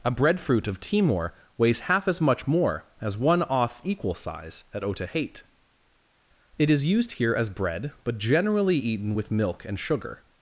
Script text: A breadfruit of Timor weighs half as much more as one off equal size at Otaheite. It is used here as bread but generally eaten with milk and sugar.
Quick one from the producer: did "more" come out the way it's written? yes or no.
yes